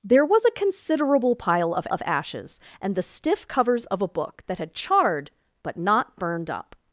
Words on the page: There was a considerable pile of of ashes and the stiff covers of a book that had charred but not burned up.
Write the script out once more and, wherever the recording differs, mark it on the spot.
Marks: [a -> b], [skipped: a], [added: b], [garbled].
There was a considerable pile of of ashes and the stiff covers of a book that had charred but not burned up.